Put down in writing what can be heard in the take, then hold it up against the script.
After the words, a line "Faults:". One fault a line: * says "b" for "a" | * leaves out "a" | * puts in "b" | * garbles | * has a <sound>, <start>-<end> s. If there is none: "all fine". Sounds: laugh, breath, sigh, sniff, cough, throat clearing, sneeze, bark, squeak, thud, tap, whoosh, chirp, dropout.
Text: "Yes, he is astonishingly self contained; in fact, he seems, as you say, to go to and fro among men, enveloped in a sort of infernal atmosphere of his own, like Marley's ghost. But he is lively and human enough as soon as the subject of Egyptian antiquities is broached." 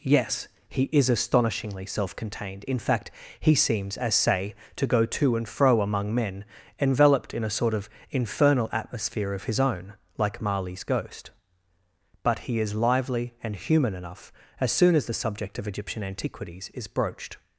"Yes, he is astonishingly self contained; in fact, he seems, as say, to go to and fro among men, enveloped in a sort of infernal atmosphere of his own, like Marley's ghost. But he is lively and human enough as soon as the subject of Egyptian antiquities is broached."
Faults:
* leaves out "you"